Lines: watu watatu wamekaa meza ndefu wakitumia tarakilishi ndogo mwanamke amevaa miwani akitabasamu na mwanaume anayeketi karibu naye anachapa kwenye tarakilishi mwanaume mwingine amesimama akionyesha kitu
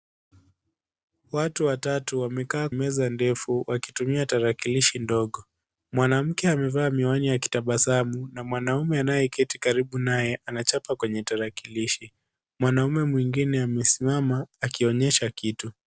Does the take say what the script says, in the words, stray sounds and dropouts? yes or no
yes